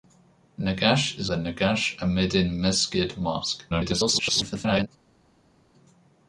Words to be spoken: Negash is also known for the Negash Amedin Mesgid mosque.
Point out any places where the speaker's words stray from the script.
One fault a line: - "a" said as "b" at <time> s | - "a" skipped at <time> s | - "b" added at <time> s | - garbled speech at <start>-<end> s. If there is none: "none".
- "also known for" skipped at 1.3 s
- garbled speech at 3.7-4.9 s